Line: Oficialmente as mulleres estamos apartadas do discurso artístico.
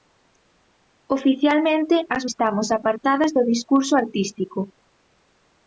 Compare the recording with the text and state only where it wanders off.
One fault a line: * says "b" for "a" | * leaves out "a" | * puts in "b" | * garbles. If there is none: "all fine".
* leaves out "mulleres"